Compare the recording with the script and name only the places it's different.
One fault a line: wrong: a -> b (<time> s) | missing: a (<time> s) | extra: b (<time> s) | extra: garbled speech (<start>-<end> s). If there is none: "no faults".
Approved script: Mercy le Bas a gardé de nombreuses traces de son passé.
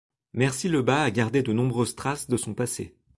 no faults